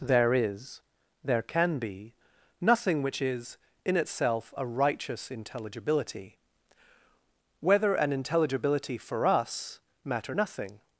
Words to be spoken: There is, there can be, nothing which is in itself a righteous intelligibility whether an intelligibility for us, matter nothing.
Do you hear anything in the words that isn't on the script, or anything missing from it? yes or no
no